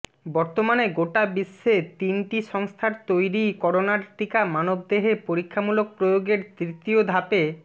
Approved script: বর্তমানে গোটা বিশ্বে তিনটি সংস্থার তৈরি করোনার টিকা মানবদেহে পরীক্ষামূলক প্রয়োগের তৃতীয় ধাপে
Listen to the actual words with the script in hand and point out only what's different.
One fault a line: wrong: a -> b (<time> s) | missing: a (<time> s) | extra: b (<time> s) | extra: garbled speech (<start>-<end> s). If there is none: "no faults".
no faults